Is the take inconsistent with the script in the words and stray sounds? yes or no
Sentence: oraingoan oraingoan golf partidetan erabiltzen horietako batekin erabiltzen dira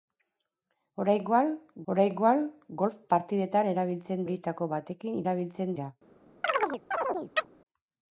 yes